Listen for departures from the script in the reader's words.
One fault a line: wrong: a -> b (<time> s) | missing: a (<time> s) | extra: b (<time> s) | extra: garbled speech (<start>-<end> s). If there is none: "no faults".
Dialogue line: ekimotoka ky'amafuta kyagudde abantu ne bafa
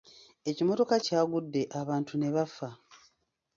missing: ky'amafuta (0.9 s)